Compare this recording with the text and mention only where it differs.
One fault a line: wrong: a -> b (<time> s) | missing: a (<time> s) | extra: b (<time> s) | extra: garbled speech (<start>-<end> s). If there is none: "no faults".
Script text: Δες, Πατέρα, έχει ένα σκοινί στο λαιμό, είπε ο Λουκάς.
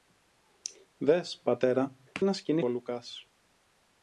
missing: έχει (2.0 s)
missing: στο λαιμό είπε (2.6 s)